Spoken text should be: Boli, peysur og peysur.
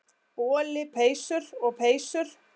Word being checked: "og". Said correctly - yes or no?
yes